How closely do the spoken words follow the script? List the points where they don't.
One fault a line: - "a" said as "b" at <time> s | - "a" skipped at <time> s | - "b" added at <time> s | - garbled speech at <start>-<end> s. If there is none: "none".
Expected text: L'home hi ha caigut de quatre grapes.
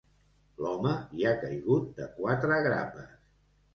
none